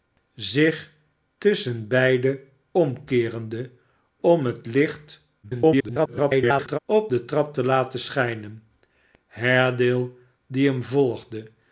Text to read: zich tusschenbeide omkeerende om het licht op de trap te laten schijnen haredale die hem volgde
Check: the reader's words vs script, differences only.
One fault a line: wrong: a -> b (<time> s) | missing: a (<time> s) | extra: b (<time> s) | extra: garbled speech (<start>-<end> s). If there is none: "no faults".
extra: garbled speech (5.4-6.8 s)